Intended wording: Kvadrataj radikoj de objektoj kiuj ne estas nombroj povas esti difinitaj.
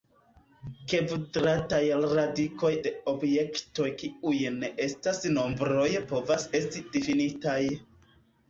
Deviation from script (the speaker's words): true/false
false